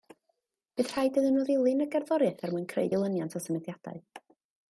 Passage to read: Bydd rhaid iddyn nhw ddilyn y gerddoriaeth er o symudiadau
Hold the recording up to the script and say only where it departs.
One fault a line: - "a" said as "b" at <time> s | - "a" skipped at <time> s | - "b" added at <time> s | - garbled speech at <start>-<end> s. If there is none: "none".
- "mwyn creu dilyniant" added at 2.5 s